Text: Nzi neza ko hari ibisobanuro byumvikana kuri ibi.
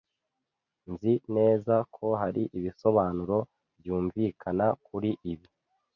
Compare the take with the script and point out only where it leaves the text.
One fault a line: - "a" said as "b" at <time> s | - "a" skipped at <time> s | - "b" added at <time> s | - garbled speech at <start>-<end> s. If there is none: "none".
none